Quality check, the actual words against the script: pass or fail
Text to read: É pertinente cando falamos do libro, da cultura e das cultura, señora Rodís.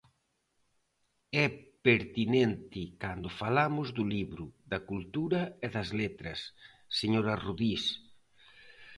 fail